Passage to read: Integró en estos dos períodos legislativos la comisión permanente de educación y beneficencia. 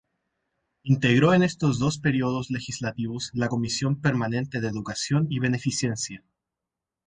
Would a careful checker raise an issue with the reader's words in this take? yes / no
no